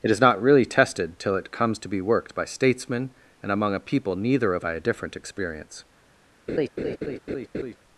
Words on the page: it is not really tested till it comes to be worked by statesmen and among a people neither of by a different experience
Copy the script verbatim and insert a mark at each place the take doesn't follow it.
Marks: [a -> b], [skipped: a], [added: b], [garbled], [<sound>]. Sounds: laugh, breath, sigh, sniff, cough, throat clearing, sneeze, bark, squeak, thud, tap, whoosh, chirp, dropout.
it is not really tested till it comes to be worked by statesmen and among a people neither of by a different experience [laugh]